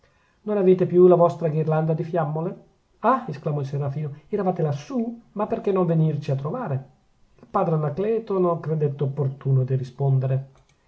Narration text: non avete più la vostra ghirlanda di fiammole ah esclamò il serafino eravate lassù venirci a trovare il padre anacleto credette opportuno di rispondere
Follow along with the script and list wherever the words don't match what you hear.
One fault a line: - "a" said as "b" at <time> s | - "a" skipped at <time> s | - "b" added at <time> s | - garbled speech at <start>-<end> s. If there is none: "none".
- "ma perchè non" added at 5.3 s
- "non" added at 8.4 s